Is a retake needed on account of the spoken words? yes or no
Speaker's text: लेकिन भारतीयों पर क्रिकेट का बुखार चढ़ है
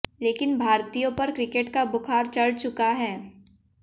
yes